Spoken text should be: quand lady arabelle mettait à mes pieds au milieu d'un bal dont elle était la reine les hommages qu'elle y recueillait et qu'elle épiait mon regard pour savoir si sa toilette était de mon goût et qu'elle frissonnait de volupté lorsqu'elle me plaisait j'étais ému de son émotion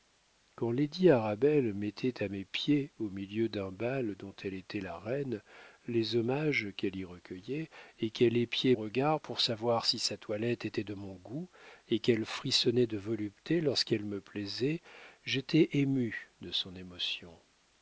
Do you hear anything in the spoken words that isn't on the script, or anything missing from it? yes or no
yes